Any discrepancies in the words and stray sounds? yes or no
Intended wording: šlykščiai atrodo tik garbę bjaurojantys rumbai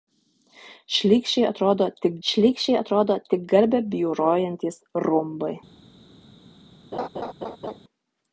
yes